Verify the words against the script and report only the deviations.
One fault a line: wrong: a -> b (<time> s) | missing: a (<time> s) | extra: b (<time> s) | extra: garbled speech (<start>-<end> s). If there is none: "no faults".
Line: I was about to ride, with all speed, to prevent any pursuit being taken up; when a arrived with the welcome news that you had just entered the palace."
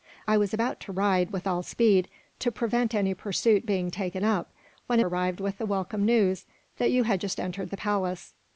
no faults